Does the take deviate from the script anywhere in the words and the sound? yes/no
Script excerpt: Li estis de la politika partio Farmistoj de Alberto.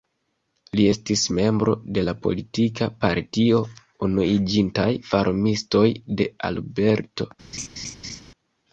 yes